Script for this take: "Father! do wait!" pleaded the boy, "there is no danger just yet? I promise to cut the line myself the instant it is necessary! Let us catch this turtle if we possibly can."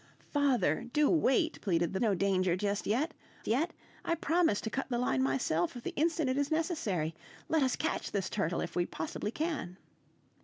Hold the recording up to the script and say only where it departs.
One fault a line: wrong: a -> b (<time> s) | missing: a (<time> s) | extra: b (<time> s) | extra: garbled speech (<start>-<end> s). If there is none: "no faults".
missing: boy there is (2.0 s)
extra: yet (3.4 s)